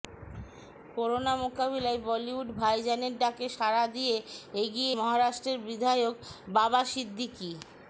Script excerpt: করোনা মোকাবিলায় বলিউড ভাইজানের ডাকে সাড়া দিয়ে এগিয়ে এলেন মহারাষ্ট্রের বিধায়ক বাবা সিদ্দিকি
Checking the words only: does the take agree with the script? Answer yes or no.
no